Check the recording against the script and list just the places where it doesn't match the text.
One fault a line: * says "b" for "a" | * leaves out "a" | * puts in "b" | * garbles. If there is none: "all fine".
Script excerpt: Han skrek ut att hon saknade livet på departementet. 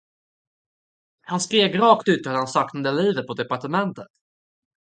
* puts in "rakt"
* says "han" for "hon"